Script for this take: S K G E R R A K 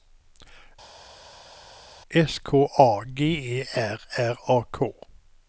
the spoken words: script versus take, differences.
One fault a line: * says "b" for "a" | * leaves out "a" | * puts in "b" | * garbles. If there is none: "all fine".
* puts in "A"